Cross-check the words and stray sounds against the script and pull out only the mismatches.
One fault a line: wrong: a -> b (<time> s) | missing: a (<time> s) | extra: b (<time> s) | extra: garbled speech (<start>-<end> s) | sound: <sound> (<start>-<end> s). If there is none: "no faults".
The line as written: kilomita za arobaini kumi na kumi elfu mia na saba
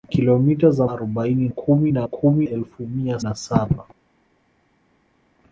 no faults